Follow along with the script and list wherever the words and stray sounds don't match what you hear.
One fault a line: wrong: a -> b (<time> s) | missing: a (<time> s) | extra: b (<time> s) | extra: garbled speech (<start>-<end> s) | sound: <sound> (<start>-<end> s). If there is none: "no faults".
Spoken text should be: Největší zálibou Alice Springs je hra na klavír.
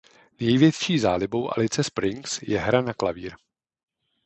no faults